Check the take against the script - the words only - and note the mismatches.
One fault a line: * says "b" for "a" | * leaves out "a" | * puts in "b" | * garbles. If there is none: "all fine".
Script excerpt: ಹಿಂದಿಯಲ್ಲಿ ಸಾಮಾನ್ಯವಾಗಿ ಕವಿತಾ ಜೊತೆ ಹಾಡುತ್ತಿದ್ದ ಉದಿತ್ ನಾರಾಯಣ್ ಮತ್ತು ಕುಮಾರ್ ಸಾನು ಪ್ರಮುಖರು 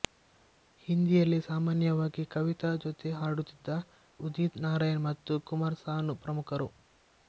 all fine